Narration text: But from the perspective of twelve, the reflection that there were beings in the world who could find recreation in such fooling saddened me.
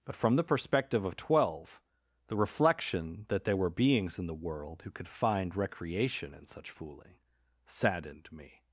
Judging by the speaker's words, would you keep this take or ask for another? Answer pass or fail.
pass